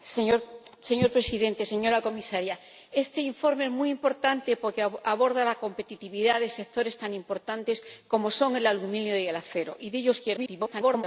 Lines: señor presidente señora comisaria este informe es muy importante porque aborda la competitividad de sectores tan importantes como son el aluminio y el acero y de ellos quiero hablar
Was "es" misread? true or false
false